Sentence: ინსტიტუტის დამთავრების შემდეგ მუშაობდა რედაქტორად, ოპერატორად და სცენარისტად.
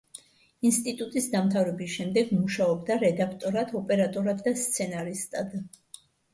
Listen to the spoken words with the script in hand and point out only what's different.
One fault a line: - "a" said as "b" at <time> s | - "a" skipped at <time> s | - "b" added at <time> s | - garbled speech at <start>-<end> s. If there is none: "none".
none